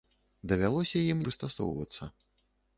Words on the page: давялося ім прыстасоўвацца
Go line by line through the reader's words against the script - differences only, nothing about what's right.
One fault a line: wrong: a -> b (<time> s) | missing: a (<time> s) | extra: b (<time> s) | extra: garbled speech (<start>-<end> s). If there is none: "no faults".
no faults